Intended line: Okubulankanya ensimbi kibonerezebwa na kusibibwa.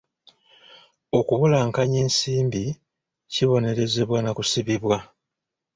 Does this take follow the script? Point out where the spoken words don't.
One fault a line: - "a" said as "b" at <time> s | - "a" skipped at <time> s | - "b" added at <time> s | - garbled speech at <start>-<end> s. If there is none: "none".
none